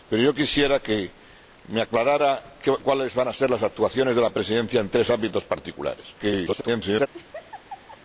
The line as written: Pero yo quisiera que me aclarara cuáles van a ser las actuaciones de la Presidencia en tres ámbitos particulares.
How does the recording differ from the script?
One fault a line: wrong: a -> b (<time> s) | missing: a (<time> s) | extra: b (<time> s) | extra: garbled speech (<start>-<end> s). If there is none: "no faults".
extra: garbled speech (6.2-7.1 s)